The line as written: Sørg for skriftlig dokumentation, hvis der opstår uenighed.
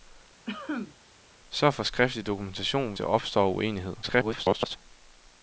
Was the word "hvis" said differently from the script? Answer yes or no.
yes